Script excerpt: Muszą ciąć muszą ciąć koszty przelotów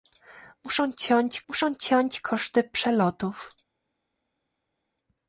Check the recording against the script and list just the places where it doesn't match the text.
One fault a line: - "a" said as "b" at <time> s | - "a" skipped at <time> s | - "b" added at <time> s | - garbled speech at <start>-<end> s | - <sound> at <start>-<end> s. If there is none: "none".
none